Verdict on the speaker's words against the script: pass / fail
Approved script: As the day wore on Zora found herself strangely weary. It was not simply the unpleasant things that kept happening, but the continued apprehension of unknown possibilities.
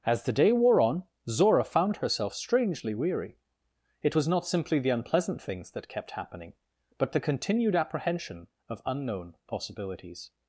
pass